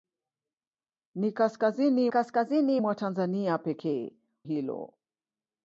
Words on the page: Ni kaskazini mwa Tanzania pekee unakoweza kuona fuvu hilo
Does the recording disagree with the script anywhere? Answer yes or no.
yes